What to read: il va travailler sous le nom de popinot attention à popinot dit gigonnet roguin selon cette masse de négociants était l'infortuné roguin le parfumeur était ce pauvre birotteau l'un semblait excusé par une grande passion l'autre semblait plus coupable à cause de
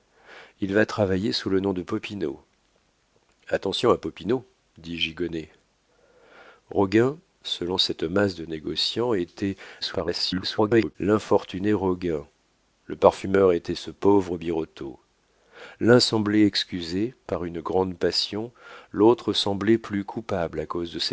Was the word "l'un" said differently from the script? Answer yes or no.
no